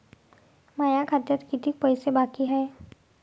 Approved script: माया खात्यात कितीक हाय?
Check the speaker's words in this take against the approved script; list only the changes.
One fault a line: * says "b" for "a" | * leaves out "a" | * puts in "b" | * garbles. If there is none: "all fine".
* puts in "पैसे बाकी"